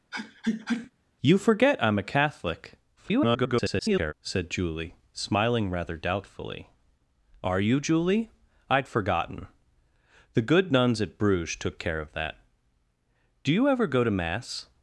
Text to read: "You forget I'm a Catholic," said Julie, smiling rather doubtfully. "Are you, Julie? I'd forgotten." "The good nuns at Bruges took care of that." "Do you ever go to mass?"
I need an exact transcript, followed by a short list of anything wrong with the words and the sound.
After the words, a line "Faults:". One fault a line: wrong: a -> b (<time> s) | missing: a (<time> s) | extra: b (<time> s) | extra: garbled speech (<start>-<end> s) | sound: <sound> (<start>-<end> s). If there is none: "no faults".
"You forget I'm a Catholic," [garbled] said Julie, smiling rather doubtfully. "Are you, Julie? I'd forgotten." "The good nuns at Bruges took care of that." "Do you ever go to mass?"
Faults:
sound: sneeze (0.1-0.9 s)
extra: garbled speech (3.0-4.1 s)